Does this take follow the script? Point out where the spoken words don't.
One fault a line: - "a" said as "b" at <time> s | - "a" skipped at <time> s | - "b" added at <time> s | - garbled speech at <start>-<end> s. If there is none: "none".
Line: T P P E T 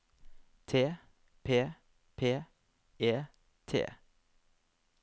none